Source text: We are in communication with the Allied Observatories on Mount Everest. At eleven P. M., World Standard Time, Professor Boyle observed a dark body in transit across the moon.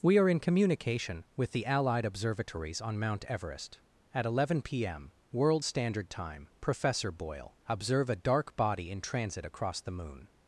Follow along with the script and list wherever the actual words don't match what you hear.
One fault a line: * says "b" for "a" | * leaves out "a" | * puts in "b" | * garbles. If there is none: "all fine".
* says "observe" for "observed"